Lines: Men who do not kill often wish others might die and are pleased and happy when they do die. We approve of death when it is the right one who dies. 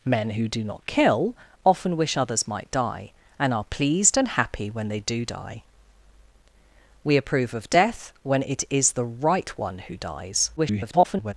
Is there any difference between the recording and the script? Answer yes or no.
yes